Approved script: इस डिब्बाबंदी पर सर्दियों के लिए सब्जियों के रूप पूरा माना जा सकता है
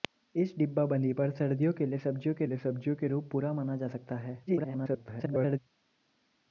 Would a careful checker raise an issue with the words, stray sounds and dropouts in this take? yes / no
yes